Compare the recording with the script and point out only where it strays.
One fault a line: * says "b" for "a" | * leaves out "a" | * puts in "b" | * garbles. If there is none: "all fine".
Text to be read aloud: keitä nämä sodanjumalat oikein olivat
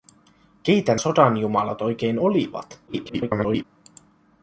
* leaves out "nämä"
* garbles